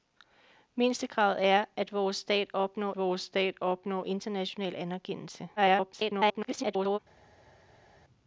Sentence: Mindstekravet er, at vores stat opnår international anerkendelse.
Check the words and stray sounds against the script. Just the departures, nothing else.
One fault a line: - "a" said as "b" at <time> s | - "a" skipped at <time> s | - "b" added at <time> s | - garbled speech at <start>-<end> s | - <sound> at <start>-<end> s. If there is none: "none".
- "vores stat opnår" added at 2.9 s
- garbled speech at 5.6-7.0 s